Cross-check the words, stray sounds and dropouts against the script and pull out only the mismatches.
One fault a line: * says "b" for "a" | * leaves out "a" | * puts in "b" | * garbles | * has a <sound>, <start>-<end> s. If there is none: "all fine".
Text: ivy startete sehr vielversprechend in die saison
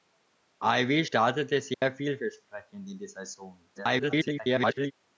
* has a dropout, 1.7-1.8 s
* garbles